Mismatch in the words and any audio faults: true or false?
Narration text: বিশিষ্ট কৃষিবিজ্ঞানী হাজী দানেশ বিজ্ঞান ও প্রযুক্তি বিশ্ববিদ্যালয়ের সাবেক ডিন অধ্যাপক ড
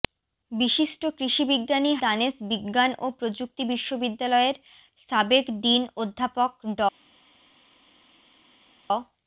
true